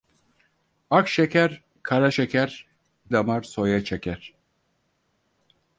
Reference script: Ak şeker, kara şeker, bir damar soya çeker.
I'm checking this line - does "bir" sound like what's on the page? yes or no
no